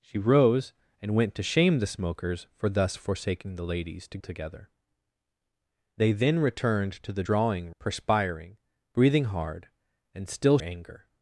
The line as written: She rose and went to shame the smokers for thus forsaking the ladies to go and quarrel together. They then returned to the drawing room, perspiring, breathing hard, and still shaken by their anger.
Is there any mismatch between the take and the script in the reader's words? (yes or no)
yes